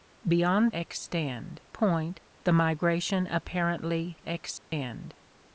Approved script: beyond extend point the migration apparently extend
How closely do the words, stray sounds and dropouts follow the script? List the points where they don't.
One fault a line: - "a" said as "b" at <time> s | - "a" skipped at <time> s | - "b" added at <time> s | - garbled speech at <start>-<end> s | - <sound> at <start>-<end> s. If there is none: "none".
- dropout at 4.6-4.7 s